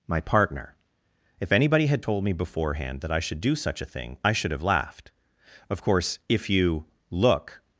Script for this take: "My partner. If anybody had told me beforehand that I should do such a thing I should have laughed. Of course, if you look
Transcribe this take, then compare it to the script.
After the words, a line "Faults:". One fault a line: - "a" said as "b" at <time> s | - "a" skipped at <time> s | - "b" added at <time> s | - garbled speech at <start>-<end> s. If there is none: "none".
"My partner. If anybody had told me beforehand that I should do such a thing I should have laughed. Of course, if you look
Faults:
none